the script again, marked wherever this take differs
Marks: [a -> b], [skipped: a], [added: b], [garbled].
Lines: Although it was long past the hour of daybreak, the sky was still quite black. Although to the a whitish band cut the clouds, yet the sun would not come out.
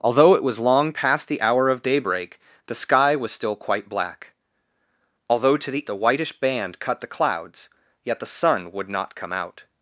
Although it was long past the hour of daybreak, the sky was still quite black. Although to the a whitish band cut the clouds, yet the sun would not come out.